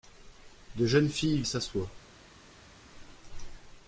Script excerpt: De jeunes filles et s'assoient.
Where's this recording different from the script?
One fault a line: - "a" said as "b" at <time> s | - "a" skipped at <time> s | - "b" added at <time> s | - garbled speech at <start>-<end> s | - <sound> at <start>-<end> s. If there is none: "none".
none